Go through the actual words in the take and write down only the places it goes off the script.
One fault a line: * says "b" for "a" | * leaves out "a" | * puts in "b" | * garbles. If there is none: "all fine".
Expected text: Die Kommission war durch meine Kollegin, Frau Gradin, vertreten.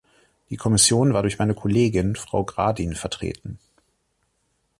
all fine